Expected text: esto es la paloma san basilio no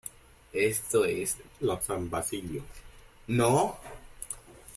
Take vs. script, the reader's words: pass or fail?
fail